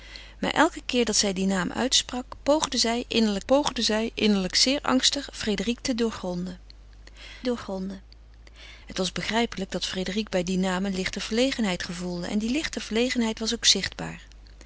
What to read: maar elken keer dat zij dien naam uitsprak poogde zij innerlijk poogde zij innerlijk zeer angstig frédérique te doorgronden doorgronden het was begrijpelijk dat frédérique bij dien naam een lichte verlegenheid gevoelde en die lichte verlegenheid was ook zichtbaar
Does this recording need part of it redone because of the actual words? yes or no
no